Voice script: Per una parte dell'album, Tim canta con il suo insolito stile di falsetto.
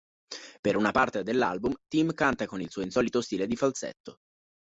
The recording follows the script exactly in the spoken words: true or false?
true